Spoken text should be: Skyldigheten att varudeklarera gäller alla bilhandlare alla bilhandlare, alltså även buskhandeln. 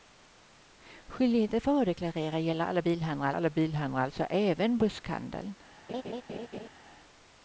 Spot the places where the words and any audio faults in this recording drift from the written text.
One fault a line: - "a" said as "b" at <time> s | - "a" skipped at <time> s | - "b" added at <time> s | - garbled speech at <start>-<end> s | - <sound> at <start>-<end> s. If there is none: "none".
- laugh at 5.9-6.7 s